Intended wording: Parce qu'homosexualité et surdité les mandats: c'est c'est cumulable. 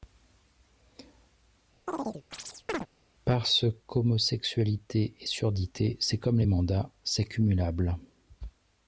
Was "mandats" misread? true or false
false